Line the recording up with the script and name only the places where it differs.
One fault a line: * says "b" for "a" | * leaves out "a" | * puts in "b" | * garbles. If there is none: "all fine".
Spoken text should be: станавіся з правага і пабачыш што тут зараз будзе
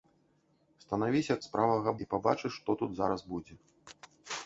all fine